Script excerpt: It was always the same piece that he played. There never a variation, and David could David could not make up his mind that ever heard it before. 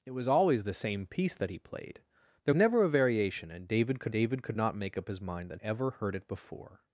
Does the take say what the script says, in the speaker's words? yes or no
yes